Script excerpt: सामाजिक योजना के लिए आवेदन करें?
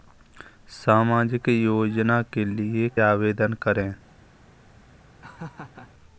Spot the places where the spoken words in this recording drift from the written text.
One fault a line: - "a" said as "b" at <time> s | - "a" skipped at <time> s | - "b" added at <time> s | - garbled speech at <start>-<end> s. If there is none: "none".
none